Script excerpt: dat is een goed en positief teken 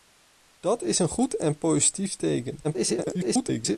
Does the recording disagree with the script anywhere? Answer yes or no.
yes